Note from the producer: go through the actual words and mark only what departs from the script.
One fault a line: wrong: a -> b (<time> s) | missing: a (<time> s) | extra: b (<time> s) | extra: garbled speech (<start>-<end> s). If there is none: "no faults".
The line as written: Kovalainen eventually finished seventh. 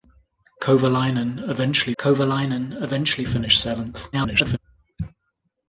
extra: kovalainen eventually (2.0 s)
extra: garbled speech (4.1-4.6 s)